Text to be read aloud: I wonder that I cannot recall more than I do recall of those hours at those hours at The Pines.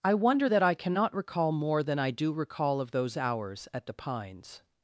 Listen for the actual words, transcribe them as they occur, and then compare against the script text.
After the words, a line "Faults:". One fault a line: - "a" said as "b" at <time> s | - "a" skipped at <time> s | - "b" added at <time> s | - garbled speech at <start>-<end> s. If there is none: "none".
I wonder that I cannot recall more than I do recall of those hours at The Pines.
Faults:
- "those hours at" skipped at 3.9 s